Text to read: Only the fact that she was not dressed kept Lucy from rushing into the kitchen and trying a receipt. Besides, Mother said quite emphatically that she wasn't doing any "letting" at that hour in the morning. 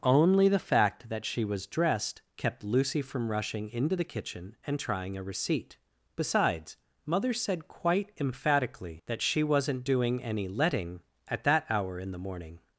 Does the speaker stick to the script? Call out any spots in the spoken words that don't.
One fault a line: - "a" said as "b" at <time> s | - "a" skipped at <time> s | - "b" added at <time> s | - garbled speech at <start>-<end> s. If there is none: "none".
- "not" skipped at 1.7 s